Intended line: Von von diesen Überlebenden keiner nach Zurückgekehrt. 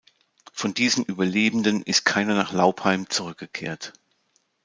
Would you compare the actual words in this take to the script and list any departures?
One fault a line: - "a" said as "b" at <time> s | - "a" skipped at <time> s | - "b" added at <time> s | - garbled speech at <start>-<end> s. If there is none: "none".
- "von" skipped at 0.7 s
- "ist" added at 1.8 s
- "Laupheim" added at 2.5 s